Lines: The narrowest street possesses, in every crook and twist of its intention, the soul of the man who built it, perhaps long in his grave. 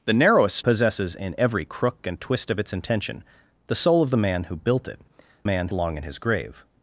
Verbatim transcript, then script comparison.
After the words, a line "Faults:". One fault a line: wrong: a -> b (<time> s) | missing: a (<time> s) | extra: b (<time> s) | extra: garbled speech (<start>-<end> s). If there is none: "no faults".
The narrowest possesses, in every crook and twist of its intention, the soul of the man who built it, man long in his grave.
Faults:
missing: street (0.7 s)
wrong: perhaps -> man (5.4 s)